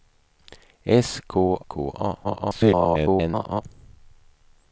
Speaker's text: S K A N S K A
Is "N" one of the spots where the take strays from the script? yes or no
yes